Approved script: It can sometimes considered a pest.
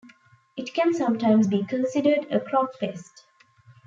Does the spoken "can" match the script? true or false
true